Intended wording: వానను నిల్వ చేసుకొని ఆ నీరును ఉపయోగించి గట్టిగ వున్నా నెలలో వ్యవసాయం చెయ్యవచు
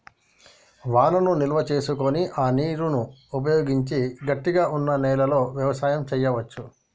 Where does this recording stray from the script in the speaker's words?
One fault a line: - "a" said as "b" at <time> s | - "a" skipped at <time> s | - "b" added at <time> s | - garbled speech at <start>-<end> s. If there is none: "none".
none